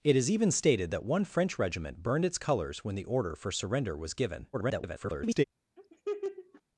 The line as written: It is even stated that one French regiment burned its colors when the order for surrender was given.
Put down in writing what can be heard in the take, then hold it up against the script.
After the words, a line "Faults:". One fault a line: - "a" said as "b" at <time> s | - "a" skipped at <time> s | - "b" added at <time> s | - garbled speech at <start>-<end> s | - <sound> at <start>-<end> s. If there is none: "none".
It is even stated that one French regiment burned its colors when the order for surrender was given. [garbled]
Faults:
- garbled speech at 4.5-5.4 s
- laugh at 5.8-6.6 s